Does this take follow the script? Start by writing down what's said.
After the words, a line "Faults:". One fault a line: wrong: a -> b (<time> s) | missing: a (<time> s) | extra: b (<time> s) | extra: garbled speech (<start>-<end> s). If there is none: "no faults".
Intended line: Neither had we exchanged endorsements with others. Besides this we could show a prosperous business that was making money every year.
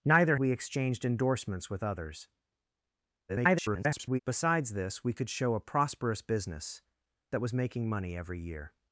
Neither we exchanged endorsements with others. [garbled] Besides this we could show a prosperous business that was making money every year.
Faults:
missing: had (0.4 s)
extra: garbled speech (3.3-4.2 s)